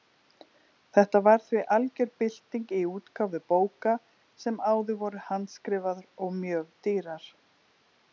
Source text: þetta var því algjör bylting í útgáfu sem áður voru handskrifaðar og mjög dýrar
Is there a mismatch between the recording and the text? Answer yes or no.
yes